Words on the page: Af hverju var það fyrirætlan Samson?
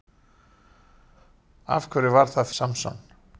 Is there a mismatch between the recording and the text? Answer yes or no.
yes